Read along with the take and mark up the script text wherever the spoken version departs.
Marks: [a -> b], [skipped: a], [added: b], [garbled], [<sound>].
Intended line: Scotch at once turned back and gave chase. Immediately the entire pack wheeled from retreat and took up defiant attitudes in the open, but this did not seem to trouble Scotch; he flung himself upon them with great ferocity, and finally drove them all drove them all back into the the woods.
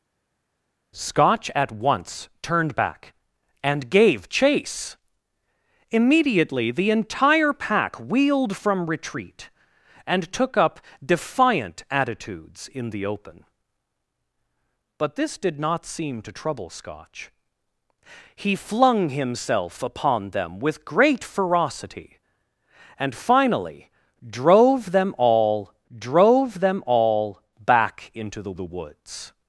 Scotch at once turned back and gave chase. Immediately the entire pack wheeled from retreat and took up defiant attitudes in the open, but this did not seem to trouble Scotch; he flung himself upon them with great ferocity, and finally drove them all drove them all back into the the woods.